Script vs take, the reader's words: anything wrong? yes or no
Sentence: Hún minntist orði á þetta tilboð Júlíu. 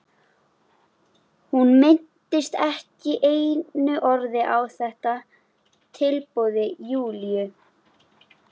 yes